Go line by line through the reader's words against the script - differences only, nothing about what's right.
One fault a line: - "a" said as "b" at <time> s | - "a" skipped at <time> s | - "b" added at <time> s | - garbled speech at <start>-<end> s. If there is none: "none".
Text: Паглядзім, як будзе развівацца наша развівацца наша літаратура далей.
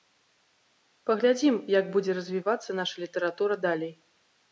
- "развівацца наша" skipped at 3.0 s